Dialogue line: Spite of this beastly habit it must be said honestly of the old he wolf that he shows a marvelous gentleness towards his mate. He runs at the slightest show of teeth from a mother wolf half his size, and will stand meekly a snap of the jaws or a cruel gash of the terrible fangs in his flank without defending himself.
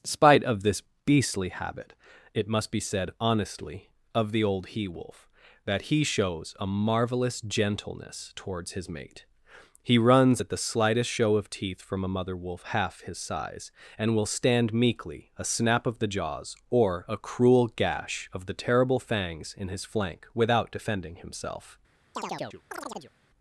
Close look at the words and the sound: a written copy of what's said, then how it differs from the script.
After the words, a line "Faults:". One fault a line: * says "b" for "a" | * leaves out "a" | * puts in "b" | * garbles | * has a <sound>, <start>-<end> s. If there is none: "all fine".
Spite of this beastly habit it must be said honestly of the old he wolf that he shows a marvelous gentleness towards his mate. He runs at the slightest show of teeth from a mother wolf half his size, and will stand meekly a snap of the jaws or a cruel gash of the terrible fangs in his flank without defending himself.
Faults:
* has a chirp, 22.1-23.1 s